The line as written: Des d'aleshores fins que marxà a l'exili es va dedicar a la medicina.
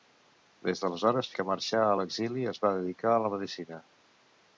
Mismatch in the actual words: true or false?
true